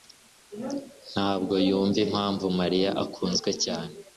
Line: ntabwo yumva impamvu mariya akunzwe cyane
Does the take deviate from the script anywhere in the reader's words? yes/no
no